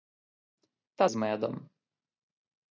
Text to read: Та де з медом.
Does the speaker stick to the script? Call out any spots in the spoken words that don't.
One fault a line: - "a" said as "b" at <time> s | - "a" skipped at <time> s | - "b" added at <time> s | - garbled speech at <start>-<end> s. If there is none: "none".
- "де" skipped at 1.1 s